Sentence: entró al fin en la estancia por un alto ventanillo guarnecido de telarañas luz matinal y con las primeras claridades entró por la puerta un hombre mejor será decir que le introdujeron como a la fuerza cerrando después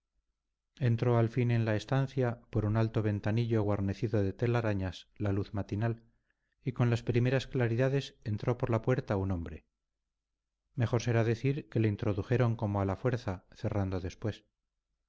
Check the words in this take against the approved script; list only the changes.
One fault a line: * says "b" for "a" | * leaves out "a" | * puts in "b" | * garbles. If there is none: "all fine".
* puts in "la"